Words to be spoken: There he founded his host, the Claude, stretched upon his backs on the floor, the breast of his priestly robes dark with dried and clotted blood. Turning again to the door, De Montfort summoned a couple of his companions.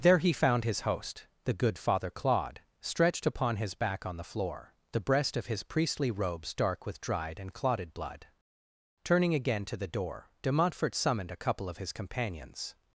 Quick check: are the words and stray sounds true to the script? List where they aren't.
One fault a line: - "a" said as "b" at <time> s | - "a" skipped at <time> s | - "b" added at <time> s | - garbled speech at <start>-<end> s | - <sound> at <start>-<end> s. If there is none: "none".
- "founded" said as "found" at 0.3 s
- "good father" added at 1.5 s
- "backs" said as "back" at 3.8 s